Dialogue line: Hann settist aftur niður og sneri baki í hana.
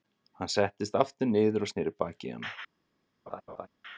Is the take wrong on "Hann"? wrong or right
right